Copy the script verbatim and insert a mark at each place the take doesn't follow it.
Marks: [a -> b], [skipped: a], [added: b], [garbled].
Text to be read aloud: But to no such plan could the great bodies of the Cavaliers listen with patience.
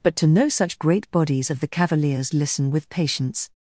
But to no such [skipped: plan could the] great bodies of the Cavaliers listen with patience.